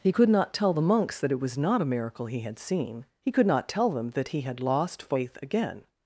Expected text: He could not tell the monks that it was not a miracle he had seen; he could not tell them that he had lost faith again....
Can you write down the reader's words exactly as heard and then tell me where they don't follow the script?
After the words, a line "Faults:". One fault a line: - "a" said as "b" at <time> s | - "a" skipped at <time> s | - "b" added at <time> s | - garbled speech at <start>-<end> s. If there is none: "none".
He could not tell the monks that it was not a miracle he had seen; he could not tell them that he had lost faith again....
Faults:
none